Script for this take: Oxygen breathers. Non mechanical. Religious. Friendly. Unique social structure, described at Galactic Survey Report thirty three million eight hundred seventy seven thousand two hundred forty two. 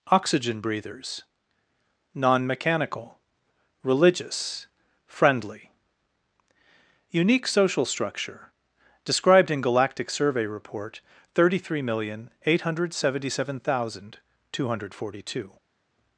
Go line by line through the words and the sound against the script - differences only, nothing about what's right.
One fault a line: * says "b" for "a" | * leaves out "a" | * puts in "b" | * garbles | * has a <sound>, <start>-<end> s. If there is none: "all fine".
* says "in" for "at"